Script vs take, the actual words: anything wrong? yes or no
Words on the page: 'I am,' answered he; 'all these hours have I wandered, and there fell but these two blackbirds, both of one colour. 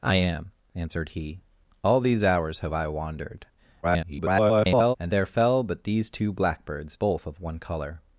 yes